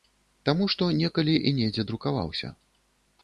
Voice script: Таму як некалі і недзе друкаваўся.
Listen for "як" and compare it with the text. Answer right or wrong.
wrong